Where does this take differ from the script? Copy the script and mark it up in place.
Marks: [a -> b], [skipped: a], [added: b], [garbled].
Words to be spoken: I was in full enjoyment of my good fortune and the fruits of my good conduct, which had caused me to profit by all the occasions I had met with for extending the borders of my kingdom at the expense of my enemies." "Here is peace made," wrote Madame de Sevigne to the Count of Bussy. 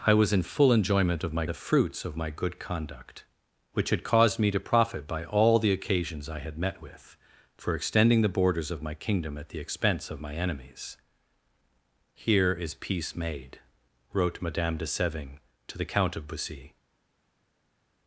I was in full enjoyment of my [skipped: good fortune and] the fruits of my good conduct, which had caused me to profit by all the occasions I had met with for extending the borders of my kingdom at the expense of my enemies." "Here is peace made," wrote Madame de Sevigne to the Count of Bussy.